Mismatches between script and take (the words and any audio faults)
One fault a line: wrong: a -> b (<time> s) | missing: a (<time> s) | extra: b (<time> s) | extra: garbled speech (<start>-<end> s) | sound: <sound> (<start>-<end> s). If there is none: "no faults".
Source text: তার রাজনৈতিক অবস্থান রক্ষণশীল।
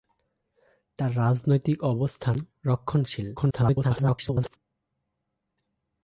extra: garbled speech (3.4-4.6 s)